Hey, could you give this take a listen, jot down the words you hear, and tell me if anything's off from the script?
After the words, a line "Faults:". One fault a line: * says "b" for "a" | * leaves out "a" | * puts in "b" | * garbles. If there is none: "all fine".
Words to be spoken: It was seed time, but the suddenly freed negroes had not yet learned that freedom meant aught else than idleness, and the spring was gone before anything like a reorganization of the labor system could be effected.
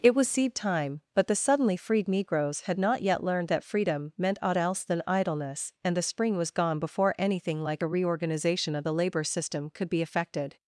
It was seed time, but the suddenly freed negroes had not yet learned that freedom meant aught else than idleness, and the spring was gone before anything like a reorganization of the labor system could be effected.
Faults:
all fine